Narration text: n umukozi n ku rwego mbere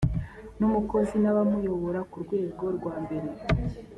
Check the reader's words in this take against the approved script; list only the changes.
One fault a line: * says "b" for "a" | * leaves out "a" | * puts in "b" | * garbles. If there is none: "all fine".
* puts in "abamuyobora"
* puts in "rwa"